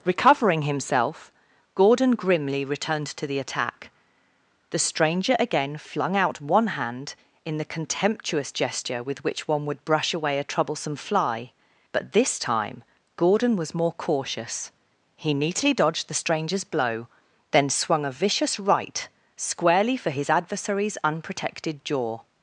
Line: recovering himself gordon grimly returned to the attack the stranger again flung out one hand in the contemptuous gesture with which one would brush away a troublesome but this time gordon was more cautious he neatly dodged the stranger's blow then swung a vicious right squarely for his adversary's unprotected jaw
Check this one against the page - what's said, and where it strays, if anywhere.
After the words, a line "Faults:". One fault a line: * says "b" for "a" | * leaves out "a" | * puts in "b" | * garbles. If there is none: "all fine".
recovering himself gordon grimly returned to the attack the stranger again flung out one hand in the contemptuous gesture with which one would brush away a troublesome fly but this time gordon was more cautious he neatly dodged the stranger's blow then swung a vicious right squarely for his adversary's unprotected jaw
Faults:
* puts in "fly"